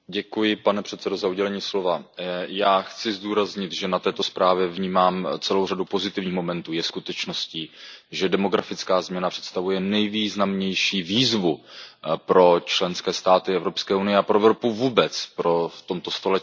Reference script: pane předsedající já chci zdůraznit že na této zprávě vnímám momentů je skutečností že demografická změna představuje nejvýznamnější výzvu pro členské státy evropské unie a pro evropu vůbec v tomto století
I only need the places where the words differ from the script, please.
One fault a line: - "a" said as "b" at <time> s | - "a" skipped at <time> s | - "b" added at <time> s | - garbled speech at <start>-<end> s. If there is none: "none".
- "celou řadu pozitivních" added at 5.4 s